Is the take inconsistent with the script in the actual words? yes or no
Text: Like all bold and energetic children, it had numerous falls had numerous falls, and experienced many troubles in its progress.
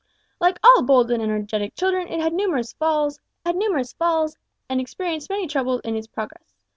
no